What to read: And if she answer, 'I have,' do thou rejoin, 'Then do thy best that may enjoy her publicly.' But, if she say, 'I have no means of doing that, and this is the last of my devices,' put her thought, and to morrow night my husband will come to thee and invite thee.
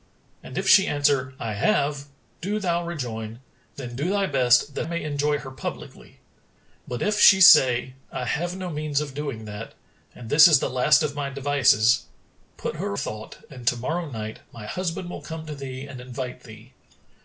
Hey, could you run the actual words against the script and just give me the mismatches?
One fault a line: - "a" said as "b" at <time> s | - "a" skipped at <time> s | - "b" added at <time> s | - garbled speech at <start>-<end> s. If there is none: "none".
none